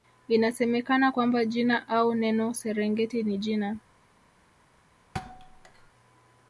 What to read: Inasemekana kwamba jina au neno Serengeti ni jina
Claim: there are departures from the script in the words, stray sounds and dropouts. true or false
true